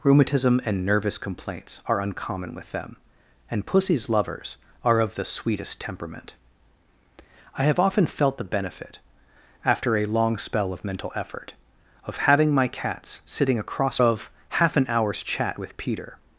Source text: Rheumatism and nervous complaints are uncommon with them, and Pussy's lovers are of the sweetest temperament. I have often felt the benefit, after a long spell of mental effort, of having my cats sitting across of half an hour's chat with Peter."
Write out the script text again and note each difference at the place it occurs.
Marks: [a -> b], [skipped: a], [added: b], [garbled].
Rheumatism and nervous complaints are uncommon with them, and Pussy's lovers are of the sweetest temperament. I have often felt the benefit, after a long spell of mental effort, of having my cats sitting across of half an hour's chat with Peter."